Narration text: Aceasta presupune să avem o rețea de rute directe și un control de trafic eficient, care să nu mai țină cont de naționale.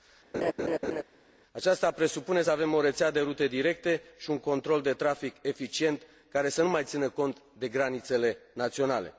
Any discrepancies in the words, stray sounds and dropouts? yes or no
yes